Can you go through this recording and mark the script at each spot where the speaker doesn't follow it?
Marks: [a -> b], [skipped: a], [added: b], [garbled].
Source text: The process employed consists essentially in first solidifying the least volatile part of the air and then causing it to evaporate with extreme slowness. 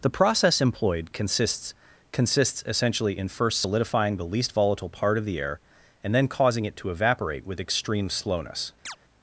The process employed consists [added: consists] essentially in first solidifying the least volatile part of the air and then causing it to evaporate with extreme slowness.